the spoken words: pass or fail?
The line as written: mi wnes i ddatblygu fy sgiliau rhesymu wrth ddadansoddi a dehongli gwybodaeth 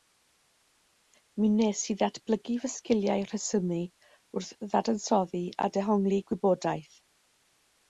pass